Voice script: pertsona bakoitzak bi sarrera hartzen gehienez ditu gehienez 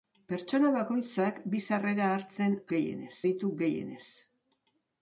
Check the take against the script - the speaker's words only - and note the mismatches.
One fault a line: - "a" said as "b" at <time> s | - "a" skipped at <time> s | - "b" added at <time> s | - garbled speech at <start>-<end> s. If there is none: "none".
none